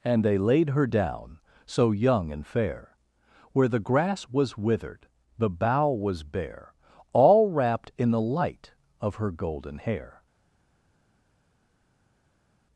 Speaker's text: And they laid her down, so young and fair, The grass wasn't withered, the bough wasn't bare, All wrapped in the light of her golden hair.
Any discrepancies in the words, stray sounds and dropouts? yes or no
yes